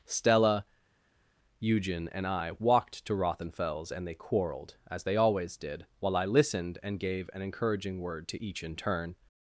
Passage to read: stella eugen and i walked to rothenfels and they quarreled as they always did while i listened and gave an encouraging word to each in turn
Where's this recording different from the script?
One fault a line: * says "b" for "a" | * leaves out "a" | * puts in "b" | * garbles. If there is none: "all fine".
all fine